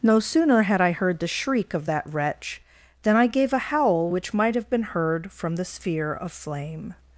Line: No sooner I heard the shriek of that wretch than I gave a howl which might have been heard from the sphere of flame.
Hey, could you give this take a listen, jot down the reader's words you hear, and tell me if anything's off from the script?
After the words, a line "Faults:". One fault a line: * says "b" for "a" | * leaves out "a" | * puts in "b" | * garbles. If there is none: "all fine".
No sooner had I heard the shriek of that wretch than I gave a howl which might have been heard from the sphere of flame.
Faults:
* puts in "had"